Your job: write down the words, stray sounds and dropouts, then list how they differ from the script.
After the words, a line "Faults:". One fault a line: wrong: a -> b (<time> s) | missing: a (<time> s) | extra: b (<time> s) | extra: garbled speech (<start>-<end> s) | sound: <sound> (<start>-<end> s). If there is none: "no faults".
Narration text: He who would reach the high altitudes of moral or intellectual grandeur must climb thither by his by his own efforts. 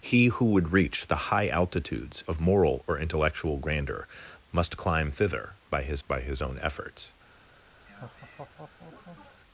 He who would reach the high altitudes of moral or intellectual grandeur must climb thither by his by his own efforts.
Faults:
sound: laugh (7.9-9.4 s)